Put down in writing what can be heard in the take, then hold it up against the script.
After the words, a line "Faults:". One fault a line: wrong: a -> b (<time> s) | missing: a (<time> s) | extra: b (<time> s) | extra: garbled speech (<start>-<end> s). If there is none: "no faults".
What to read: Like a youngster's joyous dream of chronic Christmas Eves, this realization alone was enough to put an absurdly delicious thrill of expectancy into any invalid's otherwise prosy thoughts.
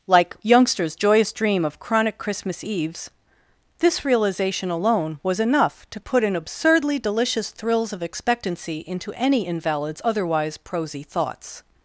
Like youngster's joyous dream of chronic Christmas Eves, this realization alone was enough to put an absurdly delicious thrills of expectancy into any invalid's otherwise prosy thoughts.
Faults:
missing: a (0.3 s)
wrong: thrill -> thrills (7.5 s)